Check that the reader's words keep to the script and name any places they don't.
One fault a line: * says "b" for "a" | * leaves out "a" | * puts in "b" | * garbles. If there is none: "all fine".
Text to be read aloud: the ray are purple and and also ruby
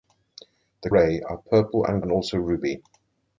all fine